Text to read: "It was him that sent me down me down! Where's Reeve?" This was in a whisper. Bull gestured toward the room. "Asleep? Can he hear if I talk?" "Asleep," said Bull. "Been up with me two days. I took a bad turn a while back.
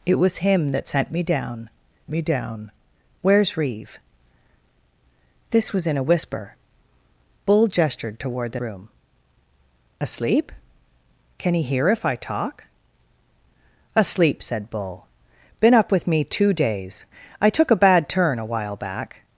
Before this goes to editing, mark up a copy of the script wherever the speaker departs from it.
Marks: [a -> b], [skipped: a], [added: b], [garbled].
"It was him that sent me down me down! Where's Reeve?" This was in a whisper. Bull gestured toward the room. "Asleep? Can he hear if I talk?" "Asleep," said Bull. "Been up with me two days. I took a bad turn a while back.